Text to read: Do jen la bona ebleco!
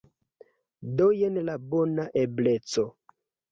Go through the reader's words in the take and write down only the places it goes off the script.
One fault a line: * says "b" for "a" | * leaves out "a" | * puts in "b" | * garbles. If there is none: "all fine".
all fine